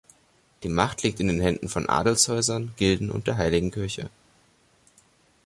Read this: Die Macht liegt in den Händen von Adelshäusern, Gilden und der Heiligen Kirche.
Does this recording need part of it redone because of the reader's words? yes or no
no